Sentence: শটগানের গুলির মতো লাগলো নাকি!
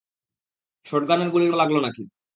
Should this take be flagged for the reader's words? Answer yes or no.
yes